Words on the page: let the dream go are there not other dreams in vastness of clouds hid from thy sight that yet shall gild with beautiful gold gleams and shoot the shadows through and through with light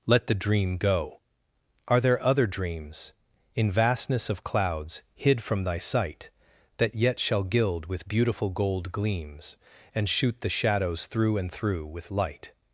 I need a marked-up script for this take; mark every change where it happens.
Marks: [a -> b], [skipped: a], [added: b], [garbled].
let the dream go are there [skipped: not] other dreams in vastness of clouds hid from thy sight that yet shall gild with beautiful gold gleams and shoot the shadows through and through with light